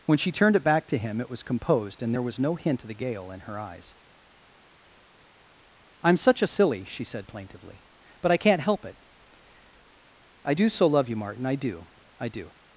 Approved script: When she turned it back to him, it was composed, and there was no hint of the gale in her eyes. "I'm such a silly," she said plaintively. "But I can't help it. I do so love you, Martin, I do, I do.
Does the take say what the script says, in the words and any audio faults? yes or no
yes